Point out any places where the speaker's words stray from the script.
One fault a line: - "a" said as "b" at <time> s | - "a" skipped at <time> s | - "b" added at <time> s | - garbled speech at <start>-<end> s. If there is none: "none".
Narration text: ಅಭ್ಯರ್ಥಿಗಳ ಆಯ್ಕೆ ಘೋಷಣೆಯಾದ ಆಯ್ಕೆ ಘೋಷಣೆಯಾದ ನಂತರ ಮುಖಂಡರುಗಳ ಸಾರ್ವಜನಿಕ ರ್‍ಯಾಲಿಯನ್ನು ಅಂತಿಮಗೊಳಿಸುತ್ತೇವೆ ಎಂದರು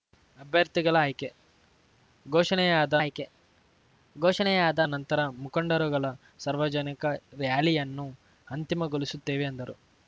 none